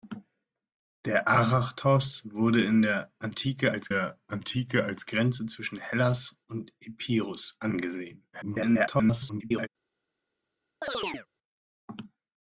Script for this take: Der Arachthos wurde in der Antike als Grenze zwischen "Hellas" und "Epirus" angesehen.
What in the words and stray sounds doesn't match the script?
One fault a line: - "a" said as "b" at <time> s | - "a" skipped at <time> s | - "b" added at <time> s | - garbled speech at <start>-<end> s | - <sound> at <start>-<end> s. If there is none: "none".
- "der Antike als" added at 3.9 s
- garbled speech at 8.3-9.7 s
- chirp at 10.8-11.3 s